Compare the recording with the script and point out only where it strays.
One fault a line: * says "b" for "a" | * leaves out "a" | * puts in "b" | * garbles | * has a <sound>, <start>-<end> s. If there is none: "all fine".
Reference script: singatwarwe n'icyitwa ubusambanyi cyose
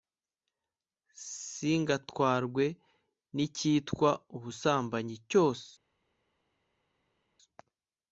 all fine